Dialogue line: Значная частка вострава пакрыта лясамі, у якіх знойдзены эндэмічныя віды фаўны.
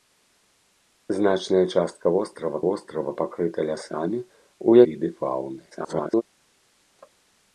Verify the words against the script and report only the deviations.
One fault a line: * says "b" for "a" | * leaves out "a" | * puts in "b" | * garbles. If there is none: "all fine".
* puts in "вострава"
* leaves out "якіх знойдзены эндэмічныя"
* garbles